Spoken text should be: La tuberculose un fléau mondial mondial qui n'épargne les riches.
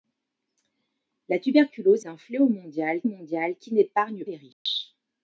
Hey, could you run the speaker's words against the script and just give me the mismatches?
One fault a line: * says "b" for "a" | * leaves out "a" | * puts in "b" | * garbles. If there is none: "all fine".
all fine